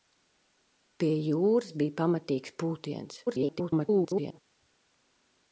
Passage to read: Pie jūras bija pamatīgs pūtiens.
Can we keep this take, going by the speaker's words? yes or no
no